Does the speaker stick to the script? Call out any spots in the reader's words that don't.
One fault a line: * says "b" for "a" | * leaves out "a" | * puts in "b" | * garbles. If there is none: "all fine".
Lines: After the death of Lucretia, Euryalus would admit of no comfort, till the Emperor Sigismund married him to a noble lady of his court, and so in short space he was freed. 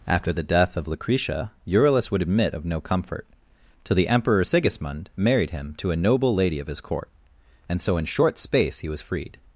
all fine